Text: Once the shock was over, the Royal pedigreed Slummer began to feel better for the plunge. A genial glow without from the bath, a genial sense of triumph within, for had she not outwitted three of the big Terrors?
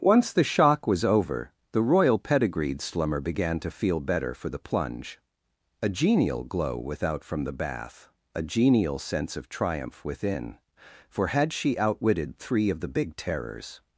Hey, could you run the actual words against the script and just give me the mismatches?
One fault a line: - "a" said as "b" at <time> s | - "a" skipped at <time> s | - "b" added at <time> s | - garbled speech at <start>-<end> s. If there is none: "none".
- "not" skipped at 11.8 s